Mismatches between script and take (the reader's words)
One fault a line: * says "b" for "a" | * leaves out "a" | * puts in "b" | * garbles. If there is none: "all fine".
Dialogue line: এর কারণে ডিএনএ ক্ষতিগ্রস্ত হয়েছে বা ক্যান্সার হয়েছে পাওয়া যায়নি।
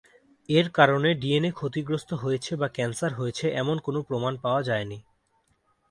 * puts in "এমন কোন প্রমাণ"